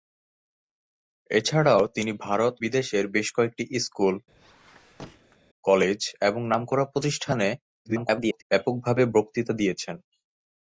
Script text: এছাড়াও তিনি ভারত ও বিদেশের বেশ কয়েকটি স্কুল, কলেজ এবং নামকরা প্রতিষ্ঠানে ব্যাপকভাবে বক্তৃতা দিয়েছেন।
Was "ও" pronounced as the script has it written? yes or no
no